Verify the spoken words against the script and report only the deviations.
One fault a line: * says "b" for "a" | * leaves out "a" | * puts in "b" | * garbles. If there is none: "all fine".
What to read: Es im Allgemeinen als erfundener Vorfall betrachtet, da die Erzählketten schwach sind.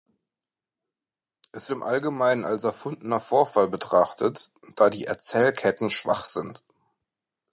all fine